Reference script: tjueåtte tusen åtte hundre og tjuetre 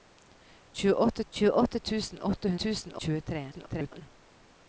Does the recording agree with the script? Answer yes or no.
no